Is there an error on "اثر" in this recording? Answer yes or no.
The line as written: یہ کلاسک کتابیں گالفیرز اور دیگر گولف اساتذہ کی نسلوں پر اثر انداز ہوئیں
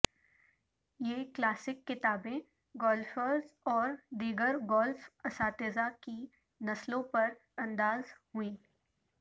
yes